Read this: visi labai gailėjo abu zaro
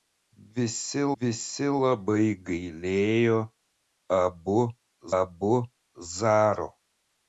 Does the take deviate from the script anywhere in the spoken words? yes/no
yes